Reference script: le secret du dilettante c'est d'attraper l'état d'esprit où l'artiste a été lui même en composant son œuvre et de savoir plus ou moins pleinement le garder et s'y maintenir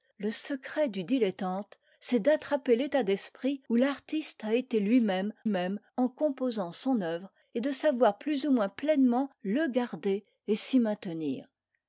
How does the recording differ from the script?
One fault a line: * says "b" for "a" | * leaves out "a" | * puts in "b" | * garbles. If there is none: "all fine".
* puts in "même"